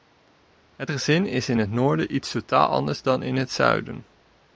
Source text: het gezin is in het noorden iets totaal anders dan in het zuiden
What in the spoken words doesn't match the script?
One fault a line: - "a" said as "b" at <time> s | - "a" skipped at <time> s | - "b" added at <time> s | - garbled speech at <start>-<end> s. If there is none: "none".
none